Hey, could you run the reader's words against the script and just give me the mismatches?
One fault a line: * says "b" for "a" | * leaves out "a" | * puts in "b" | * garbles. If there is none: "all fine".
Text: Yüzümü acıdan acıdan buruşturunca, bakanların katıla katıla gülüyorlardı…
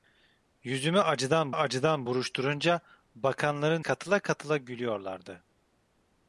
all fine